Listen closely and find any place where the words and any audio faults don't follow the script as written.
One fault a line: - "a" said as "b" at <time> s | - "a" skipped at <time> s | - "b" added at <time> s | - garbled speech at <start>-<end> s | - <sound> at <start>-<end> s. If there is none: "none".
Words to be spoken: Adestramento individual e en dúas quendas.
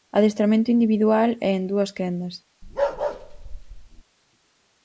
- bark at 2.6-4.0 s